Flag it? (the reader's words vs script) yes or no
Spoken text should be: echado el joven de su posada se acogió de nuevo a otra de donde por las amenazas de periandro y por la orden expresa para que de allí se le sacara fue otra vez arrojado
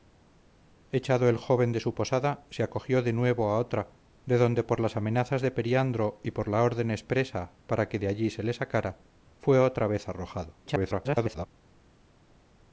yes